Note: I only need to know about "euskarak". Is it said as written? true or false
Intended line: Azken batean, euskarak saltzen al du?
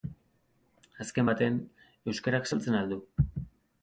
true